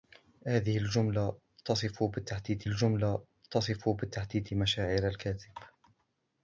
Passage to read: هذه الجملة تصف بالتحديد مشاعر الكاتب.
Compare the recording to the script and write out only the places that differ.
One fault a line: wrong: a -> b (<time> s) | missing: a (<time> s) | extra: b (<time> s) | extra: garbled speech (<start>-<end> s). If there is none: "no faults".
extra: الجملة تصف بالتحديد (2.6 s)